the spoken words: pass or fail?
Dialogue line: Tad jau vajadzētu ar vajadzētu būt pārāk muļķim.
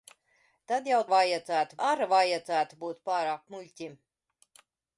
pass